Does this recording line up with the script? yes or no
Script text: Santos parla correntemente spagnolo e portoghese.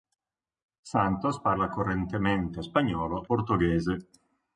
no